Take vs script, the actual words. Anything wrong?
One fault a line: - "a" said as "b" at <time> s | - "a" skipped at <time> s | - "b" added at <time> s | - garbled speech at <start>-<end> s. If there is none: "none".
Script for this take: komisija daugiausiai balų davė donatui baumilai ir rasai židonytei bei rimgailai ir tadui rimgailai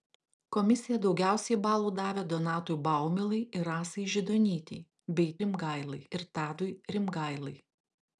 none